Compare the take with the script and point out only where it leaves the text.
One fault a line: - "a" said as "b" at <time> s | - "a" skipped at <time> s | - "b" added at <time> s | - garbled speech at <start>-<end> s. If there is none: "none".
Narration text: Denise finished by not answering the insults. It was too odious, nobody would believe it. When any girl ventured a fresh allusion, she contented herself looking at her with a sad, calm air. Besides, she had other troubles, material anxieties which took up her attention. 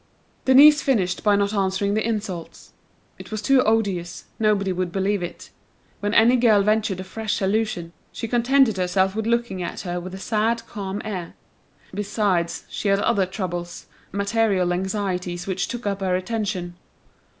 - "with" added at 9.1 s